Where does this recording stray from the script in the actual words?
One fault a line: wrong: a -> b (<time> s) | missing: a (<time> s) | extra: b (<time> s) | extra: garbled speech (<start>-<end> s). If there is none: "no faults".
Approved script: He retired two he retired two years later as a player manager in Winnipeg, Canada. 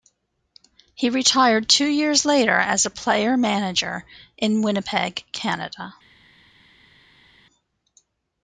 missing: he retired two (1.9 s)